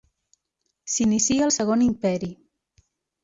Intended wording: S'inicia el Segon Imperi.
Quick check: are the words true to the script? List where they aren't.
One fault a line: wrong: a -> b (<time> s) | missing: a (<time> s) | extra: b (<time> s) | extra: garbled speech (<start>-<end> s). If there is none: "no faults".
no faults